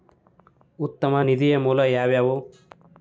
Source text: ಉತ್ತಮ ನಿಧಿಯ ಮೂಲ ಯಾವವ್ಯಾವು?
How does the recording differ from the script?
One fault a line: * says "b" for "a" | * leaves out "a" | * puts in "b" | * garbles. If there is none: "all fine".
all fine